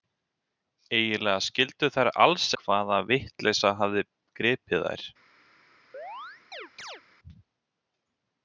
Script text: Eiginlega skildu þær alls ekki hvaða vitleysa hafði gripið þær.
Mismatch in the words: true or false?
true